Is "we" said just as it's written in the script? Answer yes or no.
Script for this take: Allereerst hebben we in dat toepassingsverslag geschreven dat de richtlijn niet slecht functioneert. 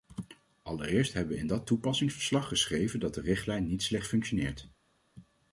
yes